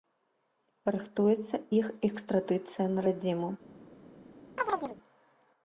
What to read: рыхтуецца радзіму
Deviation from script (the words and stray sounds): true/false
true